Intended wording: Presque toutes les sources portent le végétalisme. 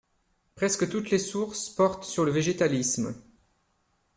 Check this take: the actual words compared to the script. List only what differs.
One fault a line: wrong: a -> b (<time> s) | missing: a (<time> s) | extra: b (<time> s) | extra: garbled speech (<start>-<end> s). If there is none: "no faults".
extra: sur (2.0 s)